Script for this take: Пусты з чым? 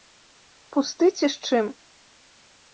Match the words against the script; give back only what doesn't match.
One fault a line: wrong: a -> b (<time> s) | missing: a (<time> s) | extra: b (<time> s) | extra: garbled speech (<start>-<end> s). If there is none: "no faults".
extra: ці (1.2 s)